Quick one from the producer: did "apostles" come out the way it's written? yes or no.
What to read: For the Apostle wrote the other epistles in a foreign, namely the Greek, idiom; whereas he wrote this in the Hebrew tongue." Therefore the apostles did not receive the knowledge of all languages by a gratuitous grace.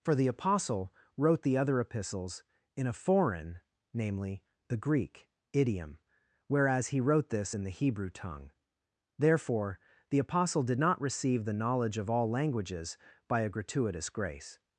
no